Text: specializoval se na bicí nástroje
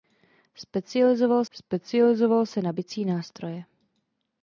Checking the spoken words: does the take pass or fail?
fail